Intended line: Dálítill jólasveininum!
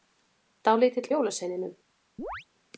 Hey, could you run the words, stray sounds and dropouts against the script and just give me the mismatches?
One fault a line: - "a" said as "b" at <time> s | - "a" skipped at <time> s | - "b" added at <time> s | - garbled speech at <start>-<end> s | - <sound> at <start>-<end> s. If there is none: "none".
- chirp at 2.2-2.5 s